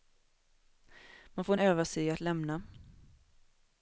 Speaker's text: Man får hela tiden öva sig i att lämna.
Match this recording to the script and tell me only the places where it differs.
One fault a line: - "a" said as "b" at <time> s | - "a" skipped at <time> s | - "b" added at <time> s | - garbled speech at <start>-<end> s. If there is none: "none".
- "hela tiden" skipped at 1.6 s